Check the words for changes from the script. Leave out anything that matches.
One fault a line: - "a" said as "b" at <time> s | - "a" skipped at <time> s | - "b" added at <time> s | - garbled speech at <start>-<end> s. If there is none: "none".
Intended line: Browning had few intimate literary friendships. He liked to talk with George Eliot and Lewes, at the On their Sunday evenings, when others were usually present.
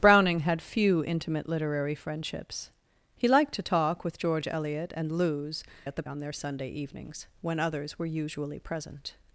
none